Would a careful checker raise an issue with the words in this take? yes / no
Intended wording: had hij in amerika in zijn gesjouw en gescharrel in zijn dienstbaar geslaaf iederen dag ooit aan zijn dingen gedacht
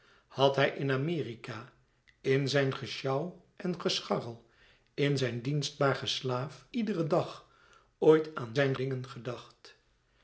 no